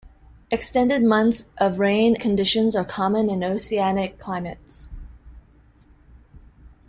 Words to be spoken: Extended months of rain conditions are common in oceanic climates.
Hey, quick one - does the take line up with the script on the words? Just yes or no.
yes